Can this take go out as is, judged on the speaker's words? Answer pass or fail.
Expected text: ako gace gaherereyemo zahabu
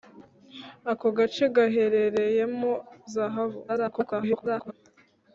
fail